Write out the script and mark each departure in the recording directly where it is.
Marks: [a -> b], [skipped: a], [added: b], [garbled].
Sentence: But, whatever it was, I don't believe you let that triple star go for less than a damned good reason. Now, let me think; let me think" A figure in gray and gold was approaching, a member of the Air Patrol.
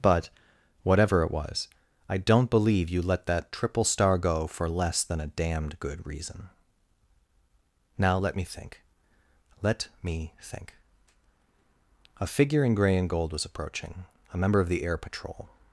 But, whatever it was, I don't believe you let that triple star go for less than a damned good reason. Now, let me think; let me think" A figure in gray and gold was approaching, a member of the Air Patrol.